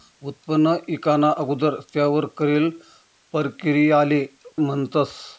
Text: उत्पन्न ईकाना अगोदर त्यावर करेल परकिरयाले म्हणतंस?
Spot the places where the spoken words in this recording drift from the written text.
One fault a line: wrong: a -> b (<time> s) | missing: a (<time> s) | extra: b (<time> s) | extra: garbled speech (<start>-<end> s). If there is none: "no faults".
no faults